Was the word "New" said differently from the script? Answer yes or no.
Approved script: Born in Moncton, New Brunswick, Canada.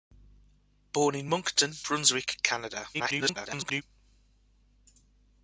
yes